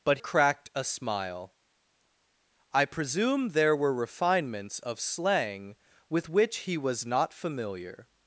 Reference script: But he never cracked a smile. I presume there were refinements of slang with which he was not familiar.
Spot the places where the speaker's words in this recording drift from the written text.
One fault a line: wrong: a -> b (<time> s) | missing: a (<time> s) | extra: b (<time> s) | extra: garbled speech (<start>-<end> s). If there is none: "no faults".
missing: he never (0.2 s)